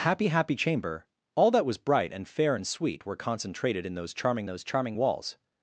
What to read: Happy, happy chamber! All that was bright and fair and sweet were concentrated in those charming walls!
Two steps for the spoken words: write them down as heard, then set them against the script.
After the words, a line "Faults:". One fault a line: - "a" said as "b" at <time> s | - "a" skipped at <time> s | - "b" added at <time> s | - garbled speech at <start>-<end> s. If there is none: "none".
Happy, happy chamber! All that was bright and fair and sweet were concentrated in those charming those charming walls!
Faults:
- "those charming" added at 4.4 s